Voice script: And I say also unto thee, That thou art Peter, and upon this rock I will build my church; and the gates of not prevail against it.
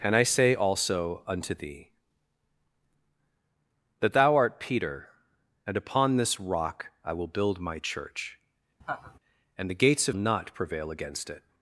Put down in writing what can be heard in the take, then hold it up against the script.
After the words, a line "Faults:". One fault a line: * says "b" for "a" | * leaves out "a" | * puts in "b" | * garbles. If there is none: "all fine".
And I say also unto thee, That thou art Peter, and upon this rock I will build my church; and the gates of not prevail against it.
Faults:
all fine